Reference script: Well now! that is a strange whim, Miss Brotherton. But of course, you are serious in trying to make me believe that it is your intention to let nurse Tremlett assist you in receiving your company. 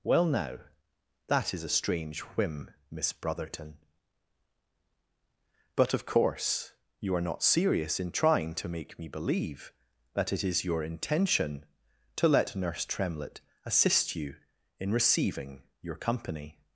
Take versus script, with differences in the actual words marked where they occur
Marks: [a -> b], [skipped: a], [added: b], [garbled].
Well now! that is a strange whim, Miss Brotherton. But of course, you are [added: not] serious in trying to make me believe that it is your intention to let nurse Tremlett assist you in receiving your company.